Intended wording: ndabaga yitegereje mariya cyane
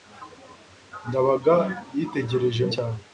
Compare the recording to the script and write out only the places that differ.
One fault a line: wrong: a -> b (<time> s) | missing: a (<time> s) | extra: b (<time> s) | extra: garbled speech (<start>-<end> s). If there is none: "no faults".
missing: mariya (2.6 s)